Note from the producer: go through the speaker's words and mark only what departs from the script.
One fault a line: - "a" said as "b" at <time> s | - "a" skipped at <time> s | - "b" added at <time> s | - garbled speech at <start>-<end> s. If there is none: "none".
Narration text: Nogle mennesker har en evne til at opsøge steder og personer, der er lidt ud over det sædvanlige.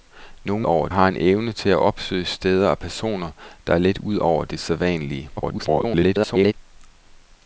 - "mennesker" said as "over" at 0.6 s
- garbled speech at 5.4-6.5 s